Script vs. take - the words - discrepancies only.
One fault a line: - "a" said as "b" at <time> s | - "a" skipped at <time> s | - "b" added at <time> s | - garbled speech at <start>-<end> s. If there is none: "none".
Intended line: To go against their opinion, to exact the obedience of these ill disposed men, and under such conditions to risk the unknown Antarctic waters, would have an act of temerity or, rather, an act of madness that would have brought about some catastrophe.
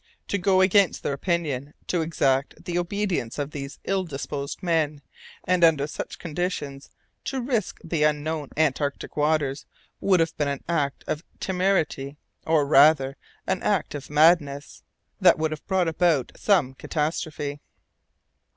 - "been" added at 10.4 s